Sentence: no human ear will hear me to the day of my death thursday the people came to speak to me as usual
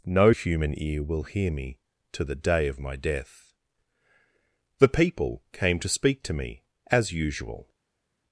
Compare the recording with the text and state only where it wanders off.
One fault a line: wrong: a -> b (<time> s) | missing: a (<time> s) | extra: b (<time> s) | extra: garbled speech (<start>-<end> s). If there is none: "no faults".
missing: thursday (3.5 s)